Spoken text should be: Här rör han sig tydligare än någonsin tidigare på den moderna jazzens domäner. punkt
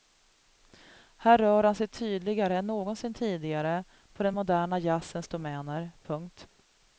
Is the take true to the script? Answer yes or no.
yes